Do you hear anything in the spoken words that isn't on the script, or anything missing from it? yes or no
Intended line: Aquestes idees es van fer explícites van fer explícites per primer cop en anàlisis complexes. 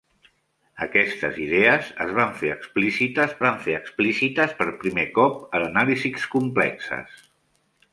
no